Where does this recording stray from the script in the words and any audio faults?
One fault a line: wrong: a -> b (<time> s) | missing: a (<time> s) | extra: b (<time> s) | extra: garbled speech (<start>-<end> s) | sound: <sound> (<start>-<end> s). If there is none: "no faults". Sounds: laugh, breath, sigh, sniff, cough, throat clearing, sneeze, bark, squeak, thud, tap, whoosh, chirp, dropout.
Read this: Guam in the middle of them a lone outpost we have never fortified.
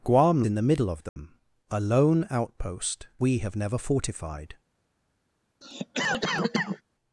sound: dropout (1.1-1.2 s)
sound: cough (5.6-6.8 s)